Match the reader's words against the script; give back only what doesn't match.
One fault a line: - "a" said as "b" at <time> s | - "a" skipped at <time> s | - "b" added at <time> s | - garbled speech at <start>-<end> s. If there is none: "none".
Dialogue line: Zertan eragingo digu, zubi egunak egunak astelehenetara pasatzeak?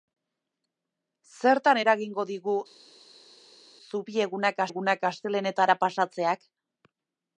none